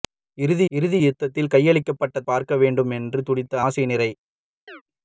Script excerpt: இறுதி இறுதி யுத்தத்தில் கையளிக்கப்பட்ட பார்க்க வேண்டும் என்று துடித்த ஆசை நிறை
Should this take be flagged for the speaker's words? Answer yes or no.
no